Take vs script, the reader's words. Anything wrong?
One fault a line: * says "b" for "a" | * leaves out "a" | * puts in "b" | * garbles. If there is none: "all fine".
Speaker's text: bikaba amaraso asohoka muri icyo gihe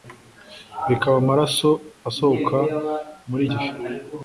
* leaves out "icyo"